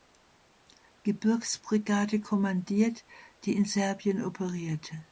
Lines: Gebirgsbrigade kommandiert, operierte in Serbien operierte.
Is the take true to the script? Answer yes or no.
no